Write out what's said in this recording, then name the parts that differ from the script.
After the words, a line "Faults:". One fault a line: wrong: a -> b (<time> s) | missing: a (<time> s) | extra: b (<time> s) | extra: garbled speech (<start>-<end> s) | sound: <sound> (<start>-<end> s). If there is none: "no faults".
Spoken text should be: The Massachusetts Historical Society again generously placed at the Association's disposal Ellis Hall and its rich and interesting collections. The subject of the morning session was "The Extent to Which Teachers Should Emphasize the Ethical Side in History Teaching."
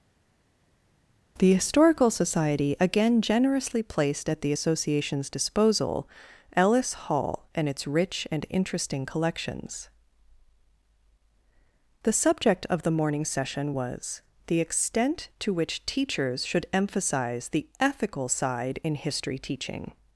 The Historical Society again generously placed at the Association's disposal Ellis Hall and its rich and interesting collections. The subject of the morning session was "The Extent to Which Teachers Should Emphasize the Ethical Side in History Teaching."
Faults:
missing: Massachusetts (1.5 s)